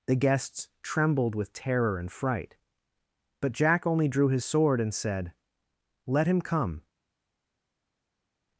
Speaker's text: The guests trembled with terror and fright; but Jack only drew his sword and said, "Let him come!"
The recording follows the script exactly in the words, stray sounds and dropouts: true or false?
true